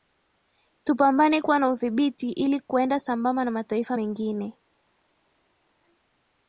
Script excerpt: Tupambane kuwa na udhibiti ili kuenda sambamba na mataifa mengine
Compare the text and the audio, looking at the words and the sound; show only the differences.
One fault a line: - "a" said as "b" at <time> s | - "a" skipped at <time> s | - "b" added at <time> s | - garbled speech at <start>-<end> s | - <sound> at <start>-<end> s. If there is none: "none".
none